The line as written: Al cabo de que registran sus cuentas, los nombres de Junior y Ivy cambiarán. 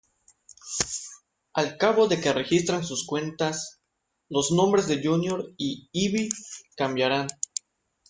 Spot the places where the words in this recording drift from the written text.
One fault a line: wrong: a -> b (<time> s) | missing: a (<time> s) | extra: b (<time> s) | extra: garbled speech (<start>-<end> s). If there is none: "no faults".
no faults